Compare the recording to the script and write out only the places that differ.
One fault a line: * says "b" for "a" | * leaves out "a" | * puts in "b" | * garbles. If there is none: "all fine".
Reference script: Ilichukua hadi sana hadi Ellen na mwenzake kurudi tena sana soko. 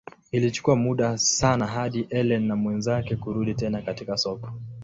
* says "muda" for "hadi"
* says "katika" for "sana"